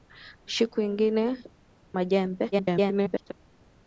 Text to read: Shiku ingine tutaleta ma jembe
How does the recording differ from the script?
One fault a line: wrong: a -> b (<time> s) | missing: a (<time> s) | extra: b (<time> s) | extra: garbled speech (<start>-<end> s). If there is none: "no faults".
missing: tutaleta (1.2 s)
extra: garbled speech (2.5-3.3 s)